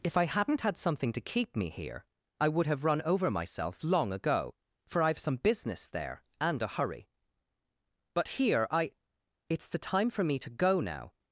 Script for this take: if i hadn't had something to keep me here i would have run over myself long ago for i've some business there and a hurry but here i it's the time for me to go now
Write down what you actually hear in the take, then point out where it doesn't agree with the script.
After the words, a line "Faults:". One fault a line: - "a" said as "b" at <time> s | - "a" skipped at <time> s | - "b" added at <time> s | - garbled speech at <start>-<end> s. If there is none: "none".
if i hadn't had something to keep me here i would have run over myself long ago for i've some business there and a hurry but here i it's the time for me to go now
Faults:
none